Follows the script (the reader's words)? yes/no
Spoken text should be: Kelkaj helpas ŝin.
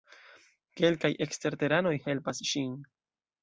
no